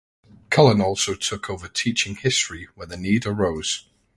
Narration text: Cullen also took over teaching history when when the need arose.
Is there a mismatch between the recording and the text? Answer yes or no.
yes